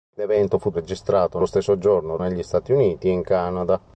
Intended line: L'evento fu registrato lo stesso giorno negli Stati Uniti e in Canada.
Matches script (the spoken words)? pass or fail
pass